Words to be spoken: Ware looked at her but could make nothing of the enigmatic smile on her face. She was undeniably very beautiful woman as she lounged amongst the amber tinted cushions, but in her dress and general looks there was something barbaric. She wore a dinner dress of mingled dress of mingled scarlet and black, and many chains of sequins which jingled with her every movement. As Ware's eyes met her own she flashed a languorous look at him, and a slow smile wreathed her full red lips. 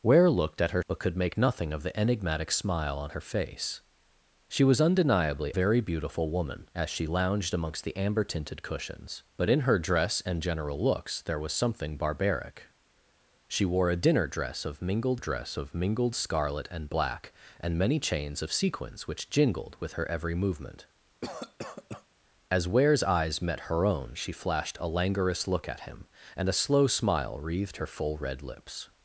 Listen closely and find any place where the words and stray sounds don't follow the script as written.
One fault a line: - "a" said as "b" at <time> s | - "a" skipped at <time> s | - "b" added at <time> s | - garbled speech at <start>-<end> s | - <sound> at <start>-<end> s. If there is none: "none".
- cough at 21.2-22.1 s